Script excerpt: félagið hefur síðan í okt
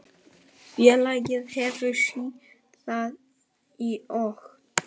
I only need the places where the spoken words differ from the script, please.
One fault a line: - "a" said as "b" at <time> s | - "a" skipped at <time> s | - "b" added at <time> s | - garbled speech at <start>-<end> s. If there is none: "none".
none